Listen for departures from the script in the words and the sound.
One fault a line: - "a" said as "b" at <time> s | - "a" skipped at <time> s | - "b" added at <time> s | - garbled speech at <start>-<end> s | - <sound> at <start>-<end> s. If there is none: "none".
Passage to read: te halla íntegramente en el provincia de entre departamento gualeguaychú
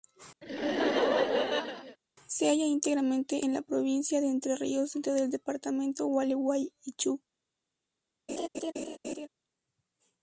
- laugh at 0.4-2.0 s
- "te" said as "se" at 2.3 s
- "el" said as "la" at 3.5 s
- "ríos dentro del" added at 4.6 s
- laugh at 8.3-9.3 s